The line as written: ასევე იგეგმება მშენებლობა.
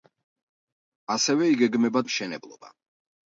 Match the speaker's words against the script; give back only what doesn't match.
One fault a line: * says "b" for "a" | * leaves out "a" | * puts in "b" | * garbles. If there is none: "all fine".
all fine